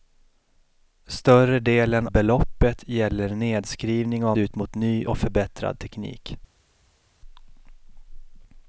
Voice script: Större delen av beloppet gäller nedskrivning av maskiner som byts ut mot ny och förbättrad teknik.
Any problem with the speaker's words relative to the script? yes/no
yes